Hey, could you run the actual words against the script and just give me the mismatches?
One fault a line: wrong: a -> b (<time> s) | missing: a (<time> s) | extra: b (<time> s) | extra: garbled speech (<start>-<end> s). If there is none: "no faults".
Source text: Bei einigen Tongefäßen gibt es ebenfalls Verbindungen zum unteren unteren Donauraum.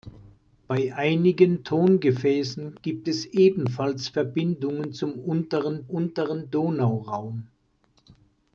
no faults